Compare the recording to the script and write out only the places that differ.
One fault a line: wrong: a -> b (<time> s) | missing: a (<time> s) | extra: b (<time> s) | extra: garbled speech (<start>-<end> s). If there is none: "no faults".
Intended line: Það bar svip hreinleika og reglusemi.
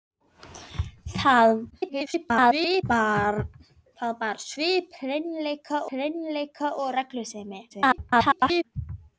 extra: garbled speech (1.7-2.8 s)
extra: hreinleika (5.9 s)
extra: garbled speech (7.7-8.6 s)